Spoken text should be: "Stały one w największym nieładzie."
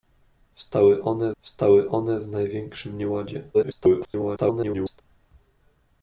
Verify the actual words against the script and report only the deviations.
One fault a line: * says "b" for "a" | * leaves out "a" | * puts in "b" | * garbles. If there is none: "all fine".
* puts in "stały one"
* garbles